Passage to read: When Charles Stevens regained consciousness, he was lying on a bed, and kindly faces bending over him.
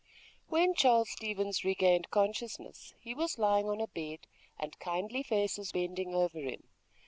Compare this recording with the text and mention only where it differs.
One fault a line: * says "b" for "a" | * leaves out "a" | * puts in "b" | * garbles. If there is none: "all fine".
all fine